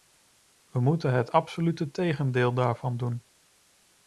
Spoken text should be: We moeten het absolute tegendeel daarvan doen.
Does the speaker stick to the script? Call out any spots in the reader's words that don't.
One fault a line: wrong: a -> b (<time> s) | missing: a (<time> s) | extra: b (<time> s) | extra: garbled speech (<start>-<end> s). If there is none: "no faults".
no faults